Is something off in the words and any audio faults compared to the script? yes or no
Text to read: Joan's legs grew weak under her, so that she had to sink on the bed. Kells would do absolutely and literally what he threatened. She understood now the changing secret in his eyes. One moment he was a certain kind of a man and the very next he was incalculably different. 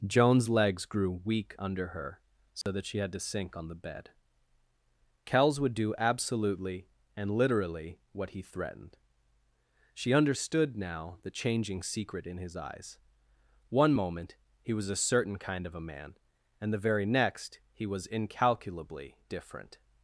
yes